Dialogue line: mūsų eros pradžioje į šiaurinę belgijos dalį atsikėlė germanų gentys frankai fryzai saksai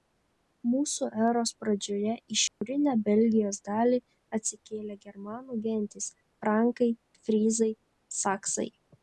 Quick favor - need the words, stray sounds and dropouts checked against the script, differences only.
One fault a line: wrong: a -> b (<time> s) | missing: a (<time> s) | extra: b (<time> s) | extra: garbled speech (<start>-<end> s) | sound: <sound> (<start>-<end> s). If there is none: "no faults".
sound: dropout (2.5-2.6 s)